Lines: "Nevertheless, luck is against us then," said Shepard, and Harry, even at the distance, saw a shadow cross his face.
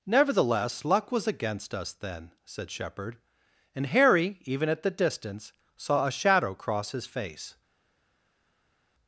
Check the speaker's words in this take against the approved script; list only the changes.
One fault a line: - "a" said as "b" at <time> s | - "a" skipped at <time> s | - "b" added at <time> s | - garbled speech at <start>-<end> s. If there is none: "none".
- "is" said as "was" at 1.1 s